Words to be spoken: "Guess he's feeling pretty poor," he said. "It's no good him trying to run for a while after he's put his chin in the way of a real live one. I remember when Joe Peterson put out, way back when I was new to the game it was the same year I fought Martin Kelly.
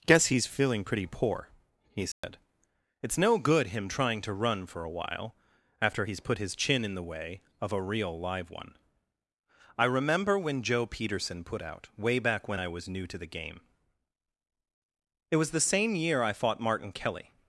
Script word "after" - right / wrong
right